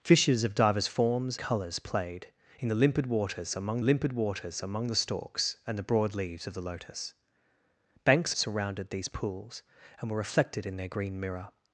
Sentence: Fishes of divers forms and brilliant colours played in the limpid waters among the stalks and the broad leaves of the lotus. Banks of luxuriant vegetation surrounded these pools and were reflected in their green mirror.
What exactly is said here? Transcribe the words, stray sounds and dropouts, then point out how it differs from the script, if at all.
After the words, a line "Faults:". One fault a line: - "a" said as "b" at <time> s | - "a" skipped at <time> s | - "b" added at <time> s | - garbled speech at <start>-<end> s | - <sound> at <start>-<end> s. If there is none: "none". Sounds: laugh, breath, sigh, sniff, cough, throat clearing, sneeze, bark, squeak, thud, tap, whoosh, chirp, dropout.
Fishes of divers forms colours played in the limpid waters among limpid waters among the stalks and the broad leaves of the lotus. Banks surrounded these pools and were reflected in their green mirror.
Faults:
- "and brilliant" skipped at 1.4 s
- "limpid waters among" added at 3.8 s
- "of luxuriant vegetation" skipped at 8.3 s